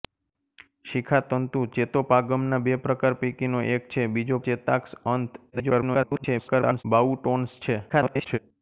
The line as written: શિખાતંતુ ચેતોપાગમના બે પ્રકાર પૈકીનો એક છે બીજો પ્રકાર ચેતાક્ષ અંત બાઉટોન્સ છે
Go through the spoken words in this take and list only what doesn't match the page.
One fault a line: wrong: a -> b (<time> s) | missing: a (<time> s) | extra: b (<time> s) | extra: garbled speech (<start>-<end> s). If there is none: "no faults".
missing: પ્રકાર (4.4 s)
extra: garbled speech (5.5-6.8 s)
extra: garbled speech (7.9-8.4 s)